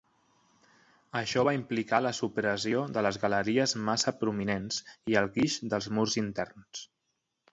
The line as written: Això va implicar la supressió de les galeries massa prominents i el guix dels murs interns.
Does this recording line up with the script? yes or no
yes